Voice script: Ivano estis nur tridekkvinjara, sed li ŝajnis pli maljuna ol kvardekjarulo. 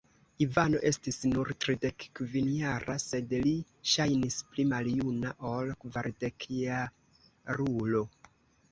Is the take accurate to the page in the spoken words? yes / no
yes